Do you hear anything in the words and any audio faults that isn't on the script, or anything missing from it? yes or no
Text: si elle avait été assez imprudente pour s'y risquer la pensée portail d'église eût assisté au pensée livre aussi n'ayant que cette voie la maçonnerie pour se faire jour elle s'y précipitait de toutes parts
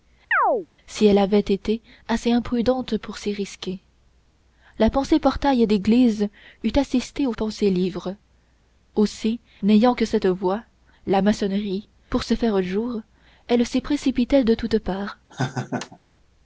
yes